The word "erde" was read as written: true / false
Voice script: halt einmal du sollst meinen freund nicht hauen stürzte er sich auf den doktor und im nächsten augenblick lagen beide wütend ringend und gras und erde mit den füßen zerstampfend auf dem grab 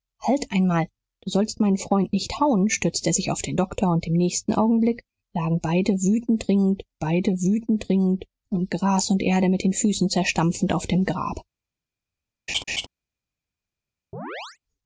true